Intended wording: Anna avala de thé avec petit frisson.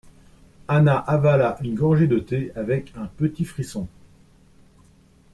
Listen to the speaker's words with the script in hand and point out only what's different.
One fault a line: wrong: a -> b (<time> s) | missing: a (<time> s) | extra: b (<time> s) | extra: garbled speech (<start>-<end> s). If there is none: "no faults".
extra: une gorgée (1.6 s)
extra: un (2.9 s)